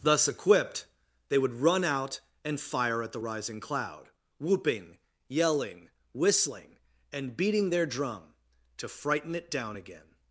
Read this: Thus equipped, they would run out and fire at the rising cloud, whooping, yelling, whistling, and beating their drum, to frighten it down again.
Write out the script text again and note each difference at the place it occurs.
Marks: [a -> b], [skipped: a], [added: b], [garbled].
Thus equipped, they would run out and fire at the rising cloud, whooping, yelling, whistling, and beating their drum, to frighten it down again.